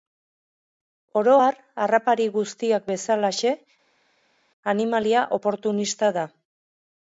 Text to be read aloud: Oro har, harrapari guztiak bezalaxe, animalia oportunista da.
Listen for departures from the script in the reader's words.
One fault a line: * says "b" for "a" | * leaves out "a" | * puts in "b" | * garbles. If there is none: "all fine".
all fine